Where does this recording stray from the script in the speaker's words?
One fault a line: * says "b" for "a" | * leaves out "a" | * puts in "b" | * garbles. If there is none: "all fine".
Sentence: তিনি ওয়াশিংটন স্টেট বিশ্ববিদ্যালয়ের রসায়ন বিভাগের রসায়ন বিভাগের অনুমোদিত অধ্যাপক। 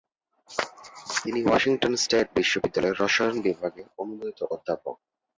* leaves out "রসায়ন বিভাগের"